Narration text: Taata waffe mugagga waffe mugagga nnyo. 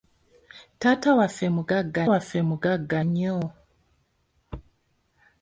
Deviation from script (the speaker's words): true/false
false